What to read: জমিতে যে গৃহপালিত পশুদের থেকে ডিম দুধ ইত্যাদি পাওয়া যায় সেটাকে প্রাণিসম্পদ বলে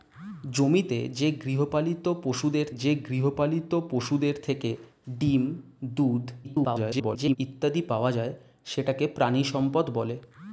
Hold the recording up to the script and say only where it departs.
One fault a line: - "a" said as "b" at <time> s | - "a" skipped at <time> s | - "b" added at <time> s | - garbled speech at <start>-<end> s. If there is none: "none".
- "যে গৃহপালিত পশুদের" added at 2.7 s
- garbled speech at 6.4-7.4 s